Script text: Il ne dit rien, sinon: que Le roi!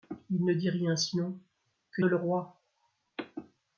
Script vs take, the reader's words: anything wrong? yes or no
no